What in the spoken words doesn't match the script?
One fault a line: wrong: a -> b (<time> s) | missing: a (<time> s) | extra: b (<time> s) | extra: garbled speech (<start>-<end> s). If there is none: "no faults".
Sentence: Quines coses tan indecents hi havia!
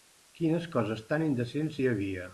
no faults